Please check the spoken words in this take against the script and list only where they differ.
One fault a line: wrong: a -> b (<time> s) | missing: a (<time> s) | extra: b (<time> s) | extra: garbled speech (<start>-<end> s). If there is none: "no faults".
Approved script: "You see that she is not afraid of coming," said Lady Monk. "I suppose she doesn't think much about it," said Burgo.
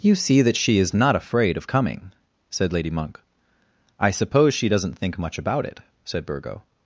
no faults